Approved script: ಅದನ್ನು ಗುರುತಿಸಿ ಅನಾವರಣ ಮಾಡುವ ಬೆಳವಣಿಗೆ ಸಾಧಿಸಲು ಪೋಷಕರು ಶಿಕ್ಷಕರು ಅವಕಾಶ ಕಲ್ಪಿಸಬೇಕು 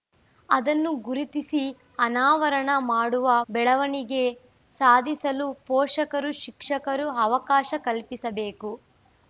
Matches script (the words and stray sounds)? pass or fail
pass